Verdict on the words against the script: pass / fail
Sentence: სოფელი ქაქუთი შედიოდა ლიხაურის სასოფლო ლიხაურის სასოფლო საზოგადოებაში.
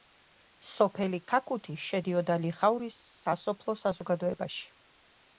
fail